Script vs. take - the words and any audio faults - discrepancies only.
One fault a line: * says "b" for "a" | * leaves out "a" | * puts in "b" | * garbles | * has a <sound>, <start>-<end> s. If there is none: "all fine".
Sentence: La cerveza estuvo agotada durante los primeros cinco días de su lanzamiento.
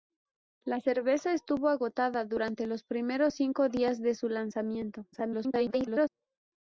* garbles